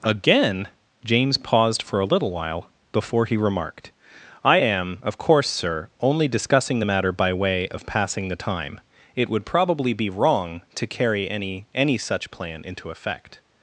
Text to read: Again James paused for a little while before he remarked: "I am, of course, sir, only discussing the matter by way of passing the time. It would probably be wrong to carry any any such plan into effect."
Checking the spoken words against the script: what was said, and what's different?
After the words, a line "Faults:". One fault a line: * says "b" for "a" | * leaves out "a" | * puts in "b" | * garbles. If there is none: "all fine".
Again James paused for a little while before he remarked: "I am, of course, sir, only discussing the matter by way of passing the time. It would probably be wrong to carry any any such plan into effect."
Faults:
all fine